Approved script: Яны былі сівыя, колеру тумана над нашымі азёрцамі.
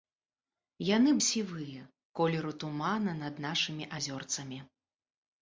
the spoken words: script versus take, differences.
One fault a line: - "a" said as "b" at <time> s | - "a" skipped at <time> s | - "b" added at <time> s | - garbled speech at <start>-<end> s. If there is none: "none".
- "былі" skipped at 1.1 s